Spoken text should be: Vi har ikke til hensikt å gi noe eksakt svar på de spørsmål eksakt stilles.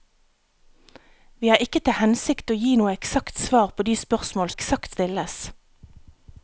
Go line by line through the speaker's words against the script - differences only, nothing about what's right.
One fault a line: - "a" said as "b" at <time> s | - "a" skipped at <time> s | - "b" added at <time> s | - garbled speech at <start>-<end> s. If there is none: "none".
none